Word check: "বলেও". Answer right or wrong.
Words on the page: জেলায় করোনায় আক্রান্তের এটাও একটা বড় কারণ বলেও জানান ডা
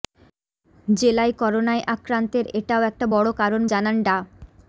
wrong